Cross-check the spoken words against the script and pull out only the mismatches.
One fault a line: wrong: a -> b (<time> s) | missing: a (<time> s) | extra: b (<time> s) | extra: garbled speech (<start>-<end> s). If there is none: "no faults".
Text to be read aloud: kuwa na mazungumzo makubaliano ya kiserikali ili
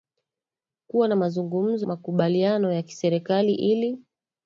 no faults